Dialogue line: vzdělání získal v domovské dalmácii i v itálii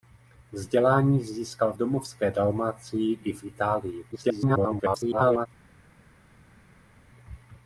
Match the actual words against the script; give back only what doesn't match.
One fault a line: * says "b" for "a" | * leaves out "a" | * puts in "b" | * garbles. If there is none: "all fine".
* leaves out "v"
* garbles